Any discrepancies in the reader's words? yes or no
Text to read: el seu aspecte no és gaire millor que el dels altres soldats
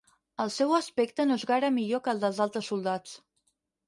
no